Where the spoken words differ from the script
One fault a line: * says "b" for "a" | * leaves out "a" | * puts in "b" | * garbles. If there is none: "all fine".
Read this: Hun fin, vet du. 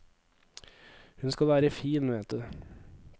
* puts in "skal være"